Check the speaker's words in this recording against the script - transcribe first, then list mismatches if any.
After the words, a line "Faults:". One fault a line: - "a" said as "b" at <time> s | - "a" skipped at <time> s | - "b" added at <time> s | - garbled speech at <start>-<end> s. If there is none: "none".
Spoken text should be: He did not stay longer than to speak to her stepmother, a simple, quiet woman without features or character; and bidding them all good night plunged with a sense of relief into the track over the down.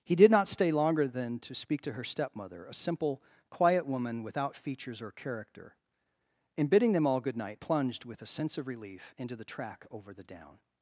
He did not stay longer than to speak to her stepmother, a simple, quiet woman without features or character; and bidding them all good night plunged with a sense of relief into the track over the down.
Faults:
none